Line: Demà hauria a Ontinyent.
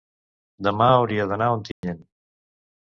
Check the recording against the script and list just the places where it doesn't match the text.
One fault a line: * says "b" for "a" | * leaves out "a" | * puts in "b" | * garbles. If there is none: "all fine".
* puts in "d'anar"